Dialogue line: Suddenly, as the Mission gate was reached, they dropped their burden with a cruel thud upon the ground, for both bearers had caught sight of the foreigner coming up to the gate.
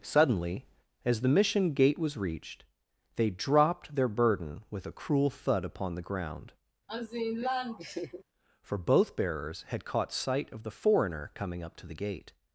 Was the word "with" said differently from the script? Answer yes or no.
no